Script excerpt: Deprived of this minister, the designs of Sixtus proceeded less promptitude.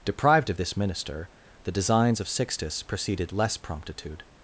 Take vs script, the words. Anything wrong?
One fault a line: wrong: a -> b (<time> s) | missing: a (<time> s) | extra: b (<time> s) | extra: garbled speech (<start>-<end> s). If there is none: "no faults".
no faults